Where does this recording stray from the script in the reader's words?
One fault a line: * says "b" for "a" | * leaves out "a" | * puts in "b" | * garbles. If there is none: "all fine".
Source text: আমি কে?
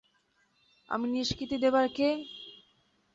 * puts in "নিষ্কৃতি দেবার"